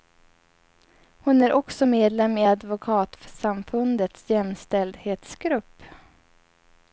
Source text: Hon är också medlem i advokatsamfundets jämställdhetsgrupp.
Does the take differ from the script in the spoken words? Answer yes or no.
no